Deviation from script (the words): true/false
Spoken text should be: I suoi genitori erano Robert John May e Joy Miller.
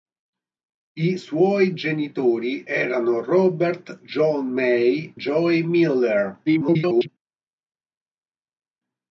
true